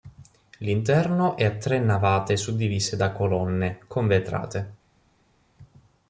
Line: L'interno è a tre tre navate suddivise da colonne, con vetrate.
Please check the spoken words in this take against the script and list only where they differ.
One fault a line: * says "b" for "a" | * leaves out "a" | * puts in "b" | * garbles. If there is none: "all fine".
* leaves out "tre"